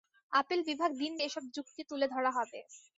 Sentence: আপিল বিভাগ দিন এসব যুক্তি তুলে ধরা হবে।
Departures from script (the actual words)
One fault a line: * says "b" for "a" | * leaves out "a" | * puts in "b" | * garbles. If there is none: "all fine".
all fine